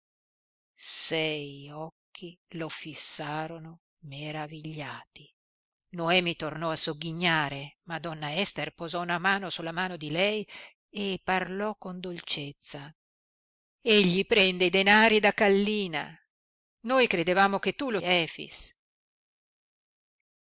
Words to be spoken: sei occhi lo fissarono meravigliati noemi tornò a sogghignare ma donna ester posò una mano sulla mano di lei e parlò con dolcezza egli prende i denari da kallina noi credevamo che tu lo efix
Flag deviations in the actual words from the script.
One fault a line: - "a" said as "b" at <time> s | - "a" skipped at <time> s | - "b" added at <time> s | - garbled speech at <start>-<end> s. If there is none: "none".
none